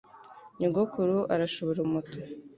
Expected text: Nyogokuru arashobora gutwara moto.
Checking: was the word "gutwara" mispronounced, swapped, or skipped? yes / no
yes